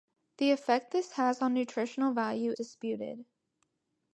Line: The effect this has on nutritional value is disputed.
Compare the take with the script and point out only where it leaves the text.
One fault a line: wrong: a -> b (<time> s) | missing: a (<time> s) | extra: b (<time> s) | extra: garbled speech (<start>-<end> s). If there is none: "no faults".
missing: is (2.5 s)